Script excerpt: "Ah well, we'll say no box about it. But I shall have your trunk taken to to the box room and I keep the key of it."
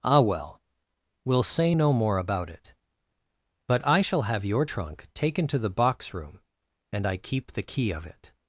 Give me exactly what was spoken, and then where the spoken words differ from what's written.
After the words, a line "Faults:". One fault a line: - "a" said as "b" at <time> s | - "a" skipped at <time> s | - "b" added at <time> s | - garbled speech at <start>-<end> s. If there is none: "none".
"Ah well, we'll say no more about it. But I shall have your trunk taken to the box room and I keep the key of it."
Faults:
- "box" said as "more" at 1.9 s
- "to" skipped at 5.6 s